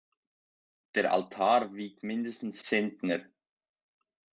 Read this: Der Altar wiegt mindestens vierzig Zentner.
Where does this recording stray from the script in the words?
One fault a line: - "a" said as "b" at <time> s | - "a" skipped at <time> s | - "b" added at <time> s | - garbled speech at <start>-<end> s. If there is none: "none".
- "vierzig" skipped at 2.6 s